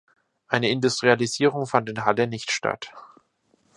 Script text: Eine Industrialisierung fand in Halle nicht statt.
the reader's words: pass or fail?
pass